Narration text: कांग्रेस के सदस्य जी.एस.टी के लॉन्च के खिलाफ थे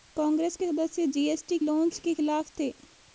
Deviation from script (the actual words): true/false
true